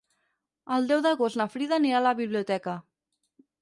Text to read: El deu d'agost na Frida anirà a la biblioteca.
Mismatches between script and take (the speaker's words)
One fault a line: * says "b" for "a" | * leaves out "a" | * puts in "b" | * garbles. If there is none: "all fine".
all fine